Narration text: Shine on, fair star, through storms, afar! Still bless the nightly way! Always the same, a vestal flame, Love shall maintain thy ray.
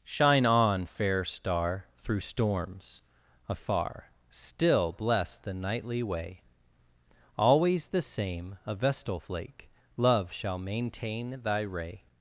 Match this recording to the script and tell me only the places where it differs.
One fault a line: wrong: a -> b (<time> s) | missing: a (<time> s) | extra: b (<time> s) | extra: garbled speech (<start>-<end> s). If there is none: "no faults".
wrong: flame -> flake (9.2 s)